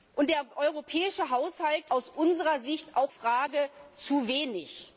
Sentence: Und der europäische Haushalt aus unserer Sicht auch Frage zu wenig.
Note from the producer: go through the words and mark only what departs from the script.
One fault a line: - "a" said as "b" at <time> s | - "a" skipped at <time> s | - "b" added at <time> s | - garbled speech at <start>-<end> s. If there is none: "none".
none